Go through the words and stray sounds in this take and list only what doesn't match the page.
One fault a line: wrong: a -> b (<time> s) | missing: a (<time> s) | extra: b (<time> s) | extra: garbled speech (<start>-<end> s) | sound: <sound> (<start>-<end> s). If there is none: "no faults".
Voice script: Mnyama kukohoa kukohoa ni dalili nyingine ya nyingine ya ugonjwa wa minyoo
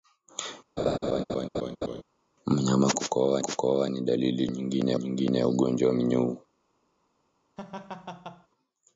sound: laugh (0.8-2.0 s)
sound: laugh (7.6-8.5 s)